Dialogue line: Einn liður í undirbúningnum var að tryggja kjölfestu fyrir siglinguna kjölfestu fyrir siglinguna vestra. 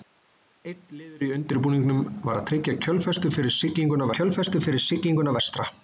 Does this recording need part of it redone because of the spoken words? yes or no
no